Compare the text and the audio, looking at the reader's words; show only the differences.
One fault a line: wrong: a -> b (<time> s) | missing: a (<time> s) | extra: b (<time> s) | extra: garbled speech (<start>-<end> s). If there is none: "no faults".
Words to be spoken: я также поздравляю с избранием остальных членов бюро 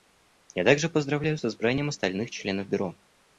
no faults